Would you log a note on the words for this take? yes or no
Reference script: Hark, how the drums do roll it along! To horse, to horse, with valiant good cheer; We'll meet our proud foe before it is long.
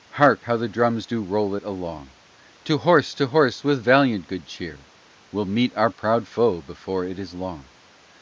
no